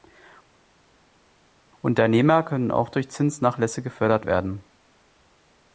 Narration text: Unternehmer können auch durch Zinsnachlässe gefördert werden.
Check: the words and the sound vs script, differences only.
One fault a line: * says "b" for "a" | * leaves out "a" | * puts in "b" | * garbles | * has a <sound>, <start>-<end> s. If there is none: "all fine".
all fine